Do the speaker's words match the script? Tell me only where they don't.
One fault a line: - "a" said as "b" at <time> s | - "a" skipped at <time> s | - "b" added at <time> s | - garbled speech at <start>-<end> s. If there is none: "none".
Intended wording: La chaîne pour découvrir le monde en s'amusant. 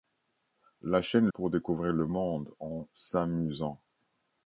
none